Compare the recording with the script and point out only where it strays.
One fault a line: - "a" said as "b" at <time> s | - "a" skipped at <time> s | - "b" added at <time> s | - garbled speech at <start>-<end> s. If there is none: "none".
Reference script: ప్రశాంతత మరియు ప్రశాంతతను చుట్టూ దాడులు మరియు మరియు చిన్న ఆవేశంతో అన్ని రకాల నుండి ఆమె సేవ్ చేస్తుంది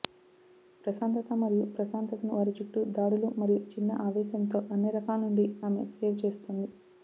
- "వారి" added at 2.3 s
- "మరియు" skipped at 3.6 s